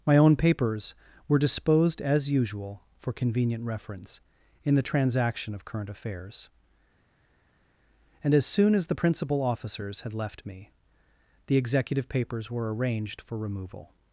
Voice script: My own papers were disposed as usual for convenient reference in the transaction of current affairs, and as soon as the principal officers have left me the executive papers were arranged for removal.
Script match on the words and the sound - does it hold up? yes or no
no